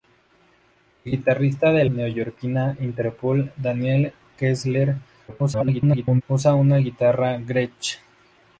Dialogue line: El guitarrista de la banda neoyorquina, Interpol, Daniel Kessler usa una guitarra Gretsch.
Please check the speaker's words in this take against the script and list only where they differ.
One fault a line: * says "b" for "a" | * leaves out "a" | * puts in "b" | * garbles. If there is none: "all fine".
* leaves out "la banda"
* garbles